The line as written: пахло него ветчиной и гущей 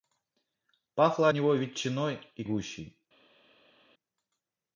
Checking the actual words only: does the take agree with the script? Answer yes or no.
yes